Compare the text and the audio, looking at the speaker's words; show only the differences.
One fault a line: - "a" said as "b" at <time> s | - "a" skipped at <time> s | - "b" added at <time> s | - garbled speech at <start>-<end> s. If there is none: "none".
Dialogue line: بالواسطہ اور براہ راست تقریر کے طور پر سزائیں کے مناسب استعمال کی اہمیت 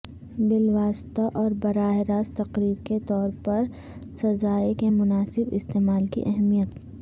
none